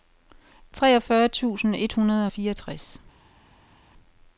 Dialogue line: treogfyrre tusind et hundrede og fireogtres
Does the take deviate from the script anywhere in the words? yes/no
no